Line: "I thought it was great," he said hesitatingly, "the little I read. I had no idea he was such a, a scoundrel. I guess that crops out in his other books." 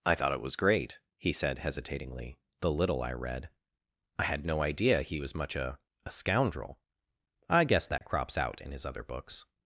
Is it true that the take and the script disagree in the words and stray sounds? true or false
true